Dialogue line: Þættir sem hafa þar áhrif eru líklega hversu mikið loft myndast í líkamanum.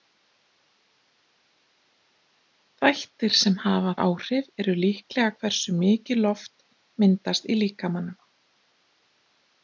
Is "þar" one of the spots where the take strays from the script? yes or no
yes